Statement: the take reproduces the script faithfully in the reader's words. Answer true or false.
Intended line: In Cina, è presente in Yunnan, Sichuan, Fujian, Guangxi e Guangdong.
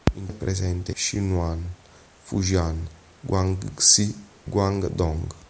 false